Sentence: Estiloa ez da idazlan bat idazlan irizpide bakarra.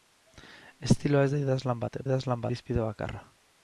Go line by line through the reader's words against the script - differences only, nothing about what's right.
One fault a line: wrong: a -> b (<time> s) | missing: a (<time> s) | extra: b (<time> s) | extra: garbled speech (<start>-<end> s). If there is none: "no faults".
no faults